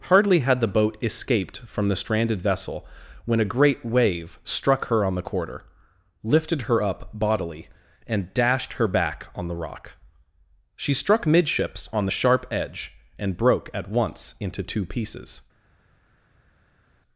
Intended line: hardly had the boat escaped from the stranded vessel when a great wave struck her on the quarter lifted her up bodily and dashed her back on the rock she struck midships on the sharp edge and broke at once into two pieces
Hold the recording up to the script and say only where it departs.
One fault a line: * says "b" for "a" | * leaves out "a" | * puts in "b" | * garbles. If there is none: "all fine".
all fine